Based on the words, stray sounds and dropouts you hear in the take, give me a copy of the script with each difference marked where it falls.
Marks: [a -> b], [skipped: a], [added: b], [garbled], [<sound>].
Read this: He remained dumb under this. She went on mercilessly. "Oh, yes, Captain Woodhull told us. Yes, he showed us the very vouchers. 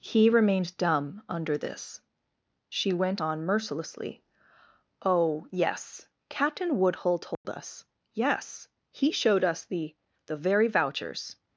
He remained dumb under this. She went on mercilessly. "Oh, yes, Captain Woodhull told [dropout] us. Yes, he showed us the [added: the] very vouchers.